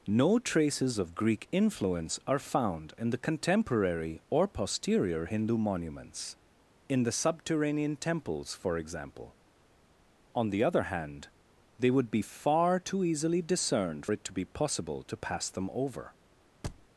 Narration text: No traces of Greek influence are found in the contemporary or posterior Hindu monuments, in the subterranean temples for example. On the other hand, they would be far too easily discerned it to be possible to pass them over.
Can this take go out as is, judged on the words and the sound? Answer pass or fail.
fail